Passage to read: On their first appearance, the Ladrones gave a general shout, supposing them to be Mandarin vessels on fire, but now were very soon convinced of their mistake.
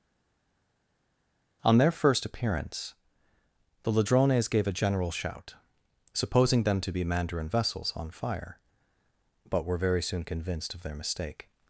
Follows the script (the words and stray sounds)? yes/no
no